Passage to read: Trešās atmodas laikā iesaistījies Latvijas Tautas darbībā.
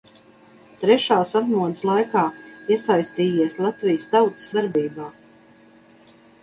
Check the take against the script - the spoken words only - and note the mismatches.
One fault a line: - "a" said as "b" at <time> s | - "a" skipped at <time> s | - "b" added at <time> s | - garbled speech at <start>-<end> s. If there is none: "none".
none